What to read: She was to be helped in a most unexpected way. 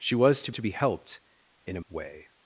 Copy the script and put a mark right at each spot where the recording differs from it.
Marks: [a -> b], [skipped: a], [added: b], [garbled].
She was to [added: to] be helped in a [skipped: most unexpected] way.